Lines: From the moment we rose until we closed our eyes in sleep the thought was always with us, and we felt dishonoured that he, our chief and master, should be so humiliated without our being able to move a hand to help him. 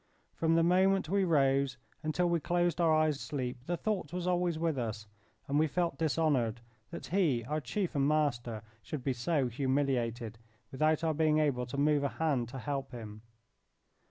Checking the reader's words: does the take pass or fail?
fail